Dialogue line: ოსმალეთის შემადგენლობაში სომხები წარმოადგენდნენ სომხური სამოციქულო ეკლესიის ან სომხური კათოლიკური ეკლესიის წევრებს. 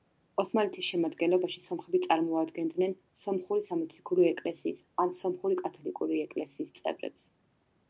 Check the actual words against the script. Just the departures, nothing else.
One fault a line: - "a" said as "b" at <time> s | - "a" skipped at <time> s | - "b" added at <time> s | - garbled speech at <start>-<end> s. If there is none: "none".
none